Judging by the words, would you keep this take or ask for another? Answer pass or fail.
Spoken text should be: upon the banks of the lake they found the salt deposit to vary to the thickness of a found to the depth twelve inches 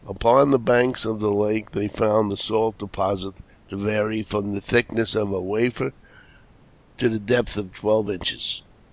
fail